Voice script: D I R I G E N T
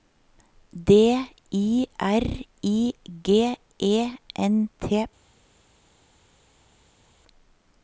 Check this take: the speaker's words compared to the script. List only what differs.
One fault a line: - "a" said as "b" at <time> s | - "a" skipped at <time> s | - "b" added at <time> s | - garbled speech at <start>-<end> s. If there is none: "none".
none